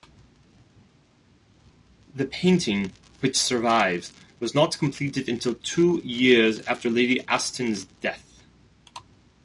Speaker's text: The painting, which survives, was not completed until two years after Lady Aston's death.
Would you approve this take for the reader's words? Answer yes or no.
yes